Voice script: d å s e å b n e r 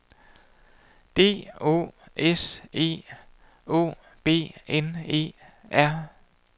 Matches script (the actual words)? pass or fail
pass